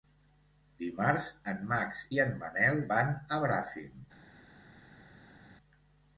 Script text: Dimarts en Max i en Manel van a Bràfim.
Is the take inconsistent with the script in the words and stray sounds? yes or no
no